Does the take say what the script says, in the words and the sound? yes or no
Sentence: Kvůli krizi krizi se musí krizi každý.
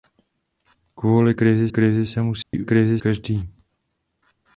no